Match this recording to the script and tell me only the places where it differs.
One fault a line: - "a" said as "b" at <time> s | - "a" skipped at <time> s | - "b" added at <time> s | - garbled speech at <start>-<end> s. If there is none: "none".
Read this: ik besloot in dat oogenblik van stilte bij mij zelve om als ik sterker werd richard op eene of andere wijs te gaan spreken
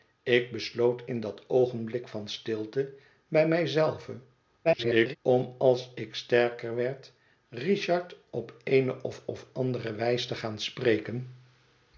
- garbled speech at 4.6-5.2 s
- "of" added at 9.3 s